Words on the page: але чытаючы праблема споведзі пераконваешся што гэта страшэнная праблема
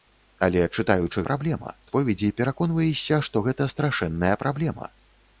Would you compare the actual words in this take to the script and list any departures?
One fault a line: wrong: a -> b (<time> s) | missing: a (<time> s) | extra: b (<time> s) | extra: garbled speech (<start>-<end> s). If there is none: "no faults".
no faults